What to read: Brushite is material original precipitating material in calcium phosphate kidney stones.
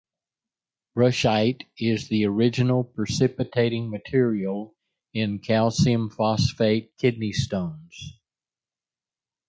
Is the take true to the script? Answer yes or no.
no